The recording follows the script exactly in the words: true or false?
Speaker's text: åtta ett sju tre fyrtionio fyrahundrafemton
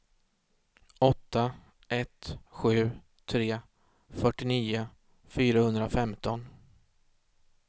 true